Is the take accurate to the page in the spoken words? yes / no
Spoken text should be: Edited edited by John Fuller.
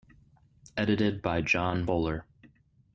no